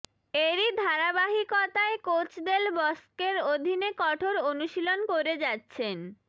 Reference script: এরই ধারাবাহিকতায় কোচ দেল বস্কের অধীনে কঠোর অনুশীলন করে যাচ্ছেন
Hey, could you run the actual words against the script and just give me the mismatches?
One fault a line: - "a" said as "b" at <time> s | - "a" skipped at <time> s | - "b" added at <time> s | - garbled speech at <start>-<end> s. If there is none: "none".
none